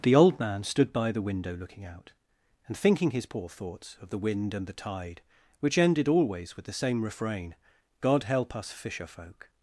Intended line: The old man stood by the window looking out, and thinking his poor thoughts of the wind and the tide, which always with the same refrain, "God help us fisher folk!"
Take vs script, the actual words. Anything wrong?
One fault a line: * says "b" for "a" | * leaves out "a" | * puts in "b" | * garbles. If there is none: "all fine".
* puts in "ended"